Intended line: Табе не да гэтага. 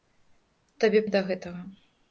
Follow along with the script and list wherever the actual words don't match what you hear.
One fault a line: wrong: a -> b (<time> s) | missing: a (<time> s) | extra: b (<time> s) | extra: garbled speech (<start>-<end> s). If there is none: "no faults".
no faults